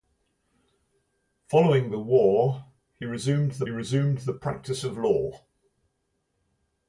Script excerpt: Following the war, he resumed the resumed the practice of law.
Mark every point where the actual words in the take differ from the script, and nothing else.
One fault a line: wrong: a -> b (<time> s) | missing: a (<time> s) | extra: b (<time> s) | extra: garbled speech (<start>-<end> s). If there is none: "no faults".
no faults